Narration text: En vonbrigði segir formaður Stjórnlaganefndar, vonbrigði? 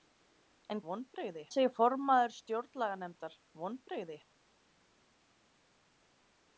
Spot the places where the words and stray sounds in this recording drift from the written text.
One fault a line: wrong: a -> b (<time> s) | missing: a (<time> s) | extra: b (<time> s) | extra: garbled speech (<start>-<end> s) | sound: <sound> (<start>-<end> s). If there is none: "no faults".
no faults